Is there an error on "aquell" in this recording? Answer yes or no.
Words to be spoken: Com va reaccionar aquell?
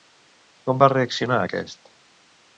yes